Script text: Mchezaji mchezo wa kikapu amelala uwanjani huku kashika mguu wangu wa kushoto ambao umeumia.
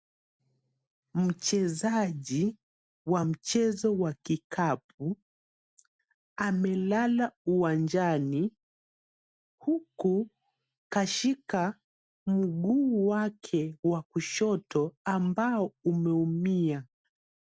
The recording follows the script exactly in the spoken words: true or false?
false